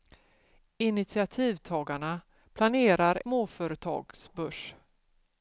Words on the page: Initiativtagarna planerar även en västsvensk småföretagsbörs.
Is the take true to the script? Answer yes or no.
no